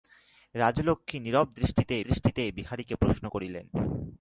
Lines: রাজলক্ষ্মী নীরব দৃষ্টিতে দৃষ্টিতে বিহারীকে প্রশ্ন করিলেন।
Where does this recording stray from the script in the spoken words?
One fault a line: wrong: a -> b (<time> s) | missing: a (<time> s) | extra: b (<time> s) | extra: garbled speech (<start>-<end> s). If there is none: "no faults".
no faults